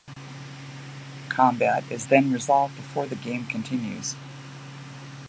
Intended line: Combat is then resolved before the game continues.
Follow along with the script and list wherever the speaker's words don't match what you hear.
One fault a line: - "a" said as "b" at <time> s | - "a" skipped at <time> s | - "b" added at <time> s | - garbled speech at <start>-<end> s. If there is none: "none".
none